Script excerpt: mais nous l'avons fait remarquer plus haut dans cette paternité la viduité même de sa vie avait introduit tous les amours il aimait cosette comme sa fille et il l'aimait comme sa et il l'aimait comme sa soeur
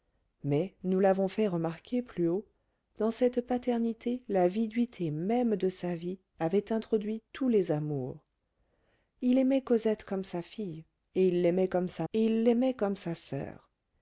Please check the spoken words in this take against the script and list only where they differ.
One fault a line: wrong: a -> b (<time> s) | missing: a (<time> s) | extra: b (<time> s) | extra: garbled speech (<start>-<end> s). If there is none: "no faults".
no faults